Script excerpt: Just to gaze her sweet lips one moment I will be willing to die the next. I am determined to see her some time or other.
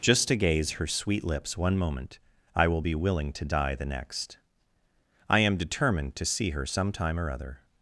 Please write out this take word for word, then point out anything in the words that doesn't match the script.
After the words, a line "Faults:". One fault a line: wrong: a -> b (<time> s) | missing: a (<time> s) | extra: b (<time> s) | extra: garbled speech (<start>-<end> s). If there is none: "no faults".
Just to gaze her sweet lips one moment I will be willing to die the next. I am determined to see her some time or other.
Faults:
no faults